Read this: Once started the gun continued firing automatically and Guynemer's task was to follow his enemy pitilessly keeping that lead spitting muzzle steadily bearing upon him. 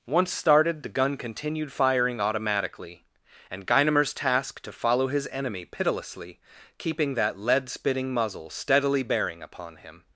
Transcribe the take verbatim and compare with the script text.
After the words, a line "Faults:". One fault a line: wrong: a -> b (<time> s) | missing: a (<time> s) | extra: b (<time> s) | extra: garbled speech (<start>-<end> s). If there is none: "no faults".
Once started the gun continued firing automatically and Guynemer's task to follow his enemy pitilessly keeping that lead spitting muzzle steadily bearing upon him.
Faults:
missing: was (4.6 s)